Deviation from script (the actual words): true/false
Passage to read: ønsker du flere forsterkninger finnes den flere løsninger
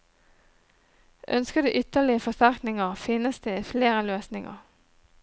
true